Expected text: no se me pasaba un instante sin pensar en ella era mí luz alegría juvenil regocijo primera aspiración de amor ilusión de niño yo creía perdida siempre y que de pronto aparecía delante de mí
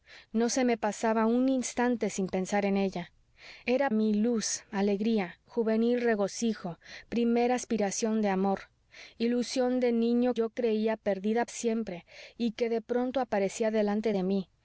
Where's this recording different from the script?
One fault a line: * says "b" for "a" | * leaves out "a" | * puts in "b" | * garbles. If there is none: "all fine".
all fine